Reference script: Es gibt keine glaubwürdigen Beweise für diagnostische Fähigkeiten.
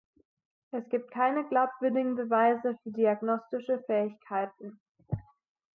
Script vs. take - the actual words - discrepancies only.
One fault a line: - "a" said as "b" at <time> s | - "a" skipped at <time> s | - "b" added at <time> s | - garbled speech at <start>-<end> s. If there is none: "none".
none